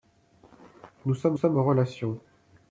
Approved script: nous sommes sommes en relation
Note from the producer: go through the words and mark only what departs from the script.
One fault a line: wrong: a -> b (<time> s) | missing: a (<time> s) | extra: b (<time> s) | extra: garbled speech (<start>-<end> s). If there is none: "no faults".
no faults